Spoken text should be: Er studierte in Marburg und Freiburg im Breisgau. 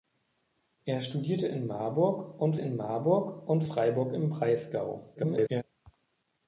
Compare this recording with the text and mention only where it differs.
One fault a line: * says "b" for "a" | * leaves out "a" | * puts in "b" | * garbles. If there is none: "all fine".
* puts in "in Marburg und"
* garbles